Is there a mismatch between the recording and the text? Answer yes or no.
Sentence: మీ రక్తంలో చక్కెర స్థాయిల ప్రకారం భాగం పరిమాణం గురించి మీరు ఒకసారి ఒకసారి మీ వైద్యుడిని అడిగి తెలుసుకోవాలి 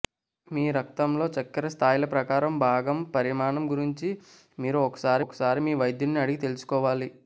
no